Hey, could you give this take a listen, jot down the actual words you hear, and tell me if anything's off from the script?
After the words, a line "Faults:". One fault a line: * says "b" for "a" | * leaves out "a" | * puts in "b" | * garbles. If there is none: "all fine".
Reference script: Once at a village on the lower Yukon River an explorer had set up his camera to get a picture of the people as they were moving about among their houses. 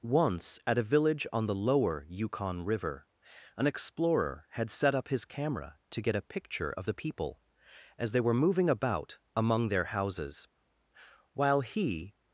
Once at a village on the lower Yukon River an explorer had set up his camera to get a picture of the people as they were moving about among their houses. While he
Faults:
* puts in "While he"